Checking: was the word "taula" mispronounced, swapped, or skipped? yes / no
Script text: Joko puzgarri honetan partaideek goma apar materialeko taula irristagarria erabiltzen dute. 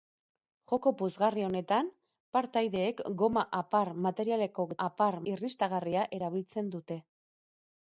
yes